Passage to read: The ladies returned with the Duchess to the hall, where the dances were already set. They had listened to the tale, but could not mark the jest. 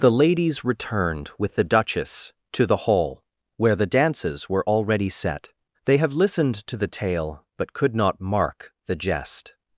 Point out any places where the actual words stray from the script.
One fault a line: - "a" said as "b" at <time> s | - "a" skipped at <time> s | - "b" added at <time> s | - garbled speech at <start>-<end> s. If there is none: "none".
- "had" said as "have" at 6.0 s